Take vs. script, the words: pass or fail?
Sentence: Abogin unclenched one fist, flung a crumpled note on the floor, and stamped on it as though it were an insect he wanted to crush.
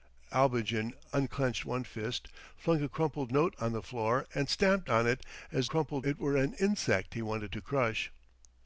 fail